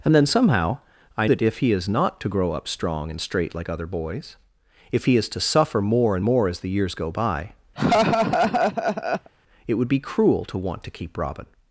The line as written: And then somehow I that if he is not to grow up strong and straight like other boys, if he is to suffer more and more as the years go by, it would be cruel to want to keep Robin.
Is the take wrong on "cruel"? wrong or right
right